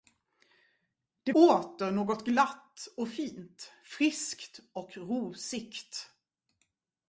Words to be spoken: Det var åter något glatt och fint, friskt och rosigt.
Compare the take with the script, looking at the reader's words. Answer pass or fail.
fail